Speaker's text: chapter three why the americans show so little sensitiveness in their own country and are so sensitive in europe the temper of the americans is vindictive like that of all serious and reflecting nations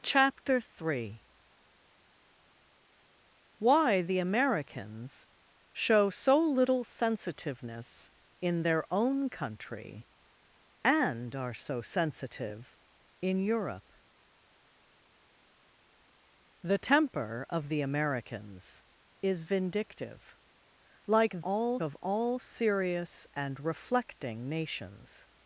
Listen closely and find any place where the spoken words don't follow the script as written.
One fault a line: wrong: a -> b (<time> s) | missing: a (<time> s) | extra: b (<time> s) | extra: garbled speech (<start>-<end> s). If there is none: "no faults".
wrong: that -> all (21.4 s)